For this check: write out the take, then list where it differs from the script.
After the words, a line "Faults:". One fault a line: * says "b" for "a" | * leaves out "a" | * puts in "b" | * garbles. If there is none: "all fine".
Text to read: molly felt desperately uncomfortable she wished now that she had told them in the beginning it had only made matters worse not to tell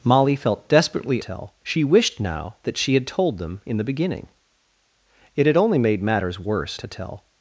molly felt desperately tell she wished now that she had told them in the beginning it had only made matters worse to tell
Faults:
* says "tell" for "uncomfortable"
* leaves out "not"